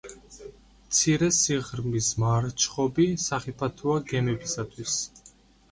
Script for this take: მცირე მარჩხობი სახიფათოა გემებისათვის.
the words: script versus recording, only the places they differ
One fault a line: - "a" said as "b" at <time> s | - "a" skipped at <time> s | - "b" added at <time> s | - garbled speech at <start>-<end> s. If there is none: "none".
- "სიღრმის" added at 1.4 s